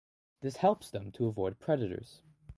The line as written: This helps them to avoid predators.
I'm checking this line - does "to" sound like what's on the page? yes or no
yes